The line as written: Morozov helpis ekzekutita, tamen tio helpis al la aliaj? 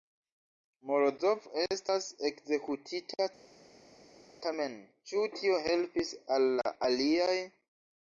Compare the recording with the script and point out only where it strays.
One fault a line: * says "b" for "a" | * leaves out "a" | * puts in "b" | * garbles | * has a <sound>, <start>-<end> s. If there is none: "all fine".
* says "estas" for "helpis"
* puts in "ĉu"